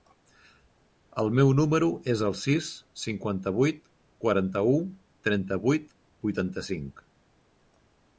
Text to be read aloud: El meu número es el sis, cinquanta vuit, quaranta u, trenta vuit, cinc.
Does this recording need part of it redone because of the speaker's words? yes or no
yes